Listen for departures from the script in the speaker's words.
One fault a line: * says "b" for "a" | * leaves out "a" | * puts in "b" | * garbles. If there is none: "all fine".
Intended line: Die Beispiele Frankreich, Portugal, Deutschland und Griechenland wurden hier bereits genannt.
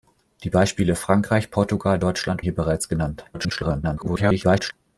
* leaves out "und Griechenland wurden"
* garbles